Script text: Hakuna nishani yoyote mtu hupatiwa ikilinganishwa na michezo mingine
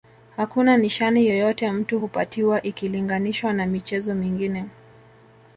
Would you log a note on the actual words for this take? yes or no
no